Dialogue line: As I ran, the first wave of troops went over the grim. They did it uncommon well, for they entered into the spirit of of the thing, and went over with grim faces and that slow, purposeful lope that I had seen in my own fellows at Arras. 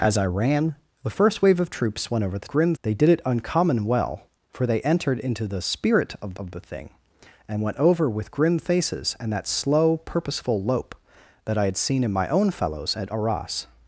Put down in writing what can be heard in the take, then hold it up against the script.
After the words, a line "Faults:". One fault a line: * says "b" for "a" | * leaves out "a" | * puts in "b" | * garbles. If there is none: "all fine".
As I ran, the first wave of troops went over the grim. They did it uncommon well, for they entered into the spirit of of the thing, and went over with grim faces and that slow, purposeful lope that I had seen in my own fellows at Arras.
Faults:
all fine